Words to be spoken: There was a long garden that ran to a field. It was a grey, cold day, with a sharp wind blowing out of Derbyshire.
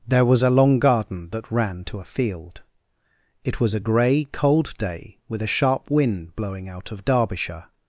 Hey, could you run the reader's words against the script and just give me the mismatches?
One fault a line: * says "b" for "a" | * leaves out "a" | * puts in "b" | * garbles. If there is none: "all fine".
all fine